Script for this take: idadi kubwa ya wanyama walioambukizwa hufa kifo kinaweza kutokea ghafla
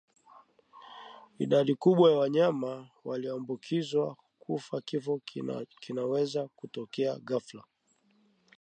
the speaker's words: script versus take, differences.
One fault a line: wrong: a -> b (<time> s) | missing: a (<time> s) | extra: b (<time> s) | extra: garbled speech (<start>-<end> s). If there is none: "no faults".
no faults